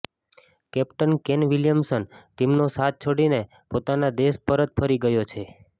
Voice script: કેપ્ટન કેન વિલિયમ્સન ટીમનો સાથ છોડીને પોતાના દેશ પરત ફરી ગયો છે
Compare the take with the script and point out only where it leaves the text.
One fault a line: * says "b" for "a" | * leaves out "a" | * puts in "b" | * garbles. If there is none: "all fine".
all fine